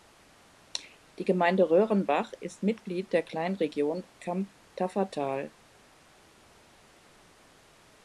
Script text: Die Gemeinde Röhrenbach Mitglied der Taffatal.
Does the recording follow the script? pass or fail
fail